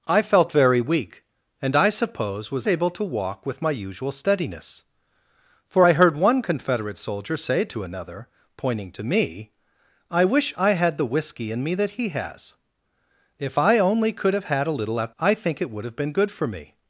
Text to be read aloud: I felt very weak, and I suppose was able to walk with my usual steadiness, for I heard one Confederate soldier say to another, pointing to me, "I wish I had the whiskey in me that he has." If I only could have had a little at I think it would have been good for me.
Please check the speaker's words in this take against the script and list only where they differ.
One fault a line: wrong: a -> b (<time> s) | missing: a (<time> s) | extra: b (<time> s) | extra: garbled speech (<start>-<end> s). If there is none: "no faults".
no faults